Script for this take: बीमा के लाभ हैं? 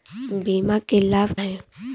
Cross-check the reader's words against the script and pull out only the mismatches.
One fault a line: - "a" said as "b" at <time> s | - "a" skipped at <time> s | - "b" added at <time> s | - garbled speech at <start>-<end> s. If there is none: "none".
none